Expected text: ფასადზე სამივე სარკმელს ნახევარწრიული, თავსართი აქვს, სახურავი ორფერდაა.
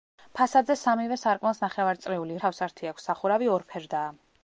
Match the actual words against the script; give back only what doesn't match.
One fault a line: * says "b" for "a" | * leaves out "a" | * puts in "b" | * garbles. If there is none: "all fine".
all fine